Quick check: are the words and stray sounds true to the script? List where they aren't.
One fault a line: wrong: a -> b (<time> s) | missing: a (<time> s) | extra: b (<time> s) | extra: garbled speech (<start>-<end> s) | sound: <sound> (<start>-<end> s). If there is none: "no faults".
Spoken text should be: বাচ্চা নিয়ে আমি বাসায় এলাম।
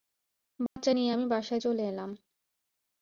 sound: dropout (0.7-0.8 s)
extra: চলে (1.6 s)